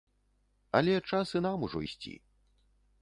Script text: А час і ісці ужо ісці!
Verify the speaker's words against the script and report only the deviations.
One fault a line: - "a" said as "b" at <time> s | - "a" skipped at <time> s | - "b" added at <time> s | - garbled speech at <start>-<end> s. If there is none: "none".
- "А" said as "Але" at 0.8 s
- "ісці" said as "нам" at 1.5 s